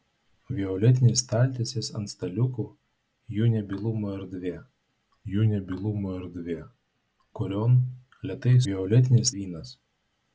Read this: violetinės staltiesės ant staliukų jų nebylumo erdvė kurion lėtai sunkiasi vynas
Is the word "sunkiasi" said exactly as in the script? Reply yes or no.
no